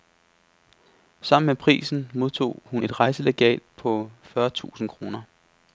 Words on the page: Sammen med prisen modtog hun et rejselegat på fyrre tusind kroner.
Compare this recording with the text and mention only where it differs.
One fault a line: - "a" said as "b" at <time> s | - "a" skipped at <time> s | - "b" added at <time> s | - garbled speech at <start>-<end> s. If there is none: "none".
none